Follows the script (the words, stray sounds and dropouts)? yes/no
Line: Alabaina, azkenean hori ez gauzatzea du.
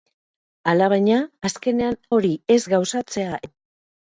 yes